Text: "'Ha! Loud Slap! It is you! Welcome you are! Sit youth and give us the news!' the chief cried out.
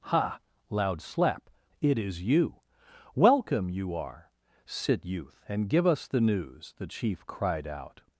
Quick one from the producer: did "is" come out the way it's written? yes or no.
yes